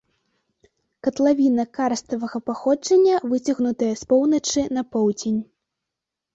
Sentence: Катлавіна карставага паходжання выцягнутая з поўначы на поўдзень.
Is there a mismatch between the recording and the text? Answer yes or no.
no